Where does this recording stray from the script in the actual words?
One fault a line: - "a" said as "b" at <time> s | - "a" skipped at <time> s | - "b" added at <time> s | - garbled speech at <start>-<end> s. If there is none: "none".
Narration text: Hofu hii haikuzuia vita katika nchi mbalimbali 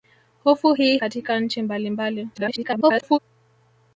- "haikuzuia vita" skipped at 1.0 s
- garbled speech at 2.3-3.2 s